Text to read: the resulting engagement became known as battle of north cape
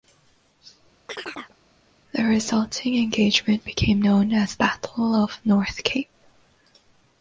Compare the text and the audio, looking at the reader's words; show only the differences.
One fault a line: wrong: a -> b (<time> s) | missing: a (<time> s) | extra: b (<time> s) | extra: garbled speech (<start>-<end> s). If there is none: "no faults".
no faults